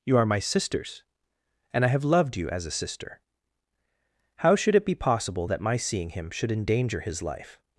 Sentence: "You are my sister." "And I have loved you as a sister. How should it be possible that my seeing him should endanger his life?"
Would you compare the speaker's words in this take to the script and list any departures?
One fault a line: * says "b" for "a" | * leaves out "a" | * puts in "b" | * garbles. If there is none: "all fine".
* says "sisters" for "sister"